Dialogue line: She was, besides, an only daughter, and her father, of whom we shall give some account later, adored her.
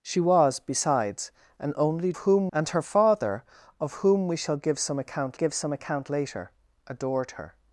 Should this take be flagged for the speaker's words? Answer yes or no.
yes